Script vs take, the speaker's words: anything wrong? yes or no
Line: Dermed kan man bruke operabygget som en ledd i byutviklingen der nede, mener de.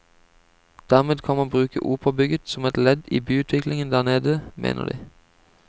yes